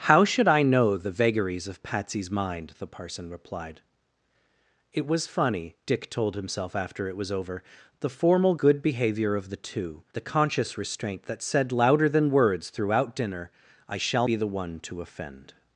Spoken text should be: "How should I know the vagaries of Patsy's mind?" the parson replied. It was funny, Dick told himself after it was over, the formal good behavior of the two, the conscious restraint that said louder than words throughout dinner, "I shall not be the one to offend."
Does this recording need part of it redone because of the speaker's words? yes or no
yes